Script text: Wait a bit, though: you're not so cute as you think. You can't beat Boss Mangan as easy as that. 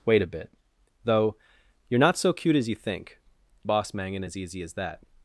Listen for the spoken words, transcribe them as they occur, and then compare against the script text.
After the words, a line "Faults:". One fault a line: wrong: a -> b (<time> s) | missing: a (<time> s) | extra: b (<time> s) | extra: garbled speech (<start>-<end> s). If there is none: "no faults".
Wait a bit, though: you're not so cute as you think. Boss Mangan as easy as that.
Faults:
missing: You can't beat (3.2 s)